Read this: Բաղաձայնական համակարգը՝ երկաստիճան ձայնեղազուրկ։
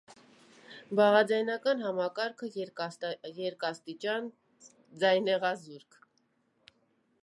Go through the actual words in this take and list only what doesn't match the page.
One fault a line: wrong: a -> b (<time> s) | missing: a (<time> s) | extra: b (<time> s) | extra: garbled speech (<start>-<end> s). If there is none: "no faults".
no faults